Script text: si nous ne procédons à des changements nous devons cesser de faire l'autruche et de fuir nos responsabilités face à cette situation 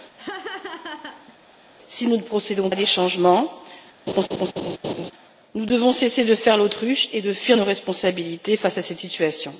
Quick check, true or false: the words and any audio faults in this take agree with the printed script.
false